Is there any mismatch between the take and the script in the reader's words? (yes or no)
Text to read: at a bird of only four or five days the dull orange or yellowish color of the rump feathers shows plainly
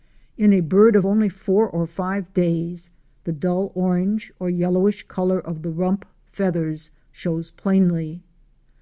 yes